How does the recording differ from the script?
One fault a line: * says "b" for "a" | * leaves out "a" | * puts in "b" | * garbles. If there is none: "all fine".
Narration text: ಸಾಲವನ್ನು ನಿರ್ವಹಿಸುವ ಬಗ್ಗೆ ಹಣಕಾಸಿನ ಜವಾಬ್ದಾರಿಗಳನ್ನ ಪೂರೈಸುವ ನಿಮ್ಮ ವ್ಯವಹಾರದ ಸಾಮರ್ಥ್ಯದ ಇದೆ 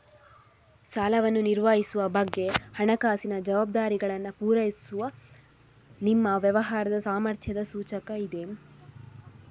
* puts in "ಸೂಚಕ"